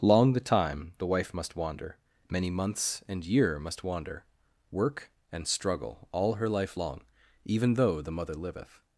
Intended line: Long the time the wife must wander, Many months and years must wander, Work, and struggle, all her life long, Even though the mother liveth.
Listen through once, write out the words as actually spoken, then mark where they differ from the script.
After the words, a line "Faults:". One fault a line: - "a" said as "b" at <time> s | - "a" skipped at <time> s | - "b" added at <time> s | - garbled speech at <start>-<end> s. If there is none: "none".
Long the time the wife must wander, Many months and year must wander, Work, and struggle, all her life long, Even though the mother liveth.
Faults:
- "years" said as "year" at 3.2 s